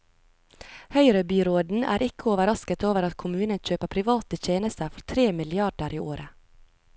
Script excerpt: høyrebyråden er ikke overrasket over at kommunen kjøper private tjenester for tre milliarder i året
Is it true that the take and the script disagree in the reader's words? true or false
false